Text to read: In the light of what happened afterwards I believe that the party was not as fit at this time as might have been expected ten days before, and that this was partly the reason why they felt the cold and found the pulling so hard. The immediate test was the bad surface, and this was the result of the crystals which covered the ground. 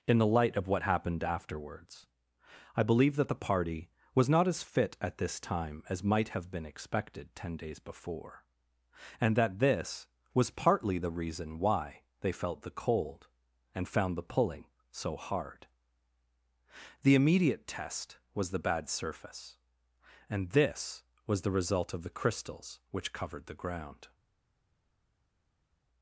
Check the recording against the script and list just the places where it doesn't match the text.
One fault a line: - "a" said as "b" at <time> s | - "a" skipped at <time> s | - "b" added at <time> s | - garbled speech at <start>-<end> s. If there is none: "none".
none